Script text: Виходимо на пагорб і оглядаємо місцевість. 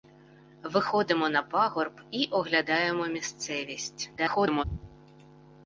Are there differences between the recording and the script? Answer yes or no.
yes